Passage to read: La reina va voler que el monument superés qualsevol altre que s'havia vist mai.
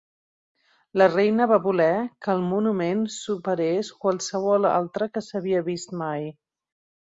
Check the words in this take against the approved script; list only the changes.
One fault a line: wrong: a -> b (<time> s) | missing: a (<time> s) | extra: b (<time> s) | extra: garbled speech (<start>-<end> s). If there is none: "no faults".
no faults